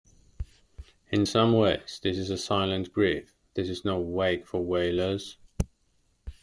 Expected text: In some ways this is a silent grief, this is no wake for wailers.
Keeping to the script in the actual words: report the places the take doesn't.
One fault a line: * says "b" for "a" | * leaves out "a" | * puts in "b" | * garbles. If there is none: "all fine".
all fine